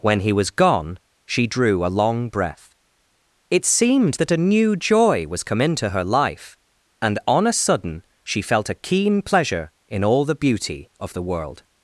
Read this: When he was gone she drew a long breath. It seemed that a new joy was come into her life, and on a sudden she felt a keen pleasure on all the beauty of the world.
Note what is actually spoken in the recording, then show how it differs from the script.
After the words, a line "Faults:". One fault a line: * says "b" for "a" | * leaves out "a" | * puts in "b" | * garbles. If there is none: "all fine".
When he was gone she drew a long breath. It seemed that a new joy was come into her life, and on a sudden she felt a keen pleasure in all the beauty of the world.
Faults:
* says "in" for "on"